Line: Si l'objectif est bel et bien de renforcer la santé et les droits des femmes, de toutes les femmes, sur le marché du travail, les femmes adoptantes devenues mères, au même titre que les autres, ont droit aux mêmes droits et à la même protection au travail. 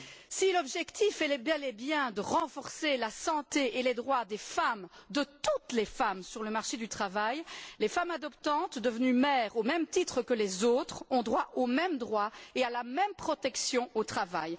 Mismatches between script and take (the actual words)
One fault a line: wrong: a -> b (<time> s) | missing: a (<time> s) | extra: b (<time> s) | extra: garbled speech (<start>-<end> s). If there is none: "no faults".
no faults